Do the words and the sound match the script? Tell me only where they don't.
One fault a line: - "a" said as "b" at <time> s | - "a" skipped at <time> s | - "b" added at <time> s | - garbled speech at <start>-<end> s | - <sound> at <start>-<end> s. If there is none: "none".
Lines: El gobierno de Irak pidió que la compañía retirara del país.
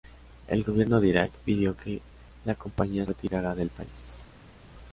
none